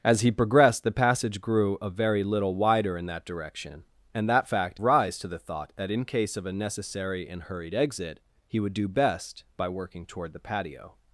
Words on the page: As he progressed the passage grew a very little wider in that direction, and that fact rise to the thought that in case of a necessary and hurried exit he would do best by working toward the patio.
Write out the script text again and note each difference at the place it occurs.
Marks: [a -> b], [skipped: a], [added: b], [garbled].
As he progressed the passage grew a very little wider in that direction, and that fact rise to the thought that in case of a necessary and hurried exit he would do best by working toward the patio.